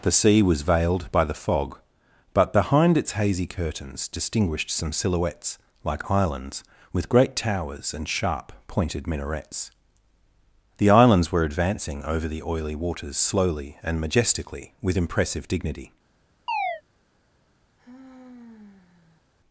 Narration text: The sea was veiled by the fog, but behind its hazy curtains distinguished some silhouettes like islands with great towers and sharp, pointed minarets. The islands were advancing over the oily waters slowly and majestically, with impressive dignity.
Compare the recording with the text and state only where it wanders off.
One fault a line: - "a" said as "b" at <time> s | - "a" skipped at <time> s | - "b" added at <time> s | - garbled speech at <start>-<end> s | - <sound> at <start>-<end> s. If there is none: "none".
- chirp at 16.5-16.8 s
- sigh at 17.8-19.2 s